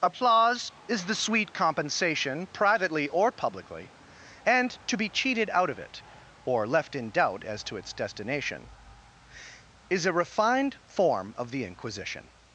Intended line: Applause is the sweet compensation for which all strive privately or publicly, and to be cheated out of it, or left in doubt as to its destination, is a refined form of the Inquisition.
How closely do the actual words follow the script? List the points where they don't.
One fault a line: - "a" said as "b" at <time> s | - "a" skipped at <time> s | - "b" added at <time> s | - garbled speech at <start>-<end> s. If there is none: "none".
- "for which all strive" skipped at 2.5 s